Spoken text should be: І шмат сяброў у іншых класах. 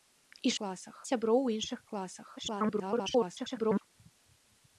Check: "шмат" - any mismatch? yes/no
yes